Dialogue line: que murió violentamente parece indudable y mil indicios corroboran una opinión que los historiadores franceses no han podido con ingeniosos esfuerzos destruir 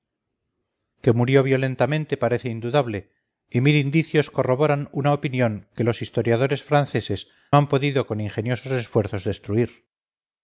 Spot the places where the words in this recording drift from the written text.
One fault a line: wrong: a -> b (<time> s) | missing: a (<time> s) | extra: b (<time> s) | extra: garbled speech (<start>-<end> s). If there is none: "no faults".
missing: no (7.3 s)